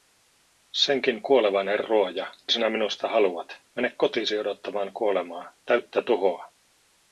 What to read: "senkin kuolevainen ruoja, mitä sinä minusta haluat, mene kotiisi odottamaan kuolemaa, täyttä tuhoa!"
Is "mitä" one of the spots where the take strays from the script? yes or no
yes